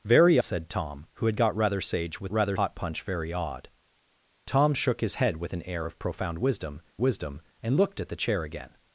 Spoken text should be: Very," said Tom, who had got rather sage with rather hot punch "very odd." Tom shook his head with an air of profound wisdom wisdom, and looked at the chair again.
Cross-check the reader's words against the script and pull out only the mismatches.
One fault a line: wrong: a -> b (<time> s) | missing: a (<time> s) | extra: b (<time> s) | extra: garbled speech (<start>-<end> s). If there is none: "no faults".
no faults